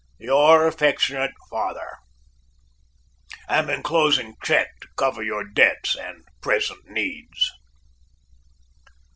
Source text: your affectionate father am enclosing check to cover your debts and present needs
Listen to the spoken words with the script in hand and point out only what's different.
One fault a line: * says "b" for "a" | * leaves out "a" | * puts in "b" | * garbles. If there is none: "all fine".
all fine